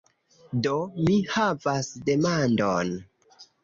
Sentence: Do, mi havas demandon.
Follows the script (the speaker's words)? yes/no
yes